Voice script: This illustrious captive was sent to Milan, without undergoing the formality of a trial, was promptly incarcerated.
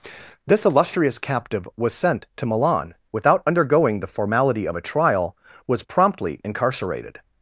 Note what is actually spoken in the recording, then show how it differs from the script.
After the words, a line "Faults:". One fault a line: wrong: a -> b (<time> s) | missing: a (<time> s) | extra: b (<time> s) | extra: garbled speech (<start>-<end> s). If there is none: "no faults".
This illustrious captive was sent to Milan, without undergoing the formality of a trial, was promptly incarcerated.
Faults:
no faults